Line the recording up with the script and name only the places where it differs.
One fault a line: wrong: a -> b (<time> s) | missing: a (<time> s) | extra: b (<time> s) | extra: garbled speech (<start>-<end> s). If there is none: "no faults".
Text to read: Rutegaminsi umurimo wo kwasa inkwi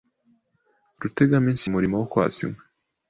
no faults